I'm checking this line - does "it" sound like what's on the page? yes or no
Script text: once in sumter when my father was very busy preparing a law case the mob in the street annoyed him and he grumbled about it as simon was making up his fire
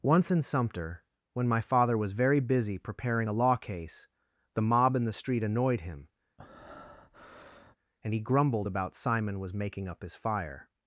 no